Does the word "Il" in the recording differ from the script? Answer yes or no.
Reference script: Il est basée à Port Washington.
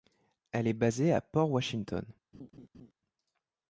yes